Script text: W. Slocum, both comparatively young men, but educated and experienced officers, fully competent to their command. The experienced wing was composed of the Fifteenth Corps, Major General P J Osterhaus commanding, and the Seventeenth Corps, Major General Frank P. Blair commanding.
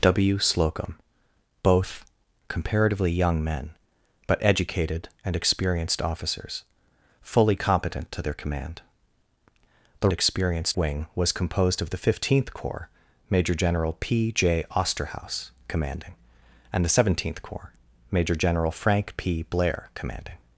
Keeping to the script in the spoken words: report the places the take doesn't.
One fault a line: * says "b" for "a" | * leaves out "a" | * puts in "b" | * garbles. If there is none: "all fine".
all fine